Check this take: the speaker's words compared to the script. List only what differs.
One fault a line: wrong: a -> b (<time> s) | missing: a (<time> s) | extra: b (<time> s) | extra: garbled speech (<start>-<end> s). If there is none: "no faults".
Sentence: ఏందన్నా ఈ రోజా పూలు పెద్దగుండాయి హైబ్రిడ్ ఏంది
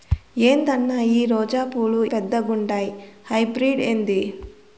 no faults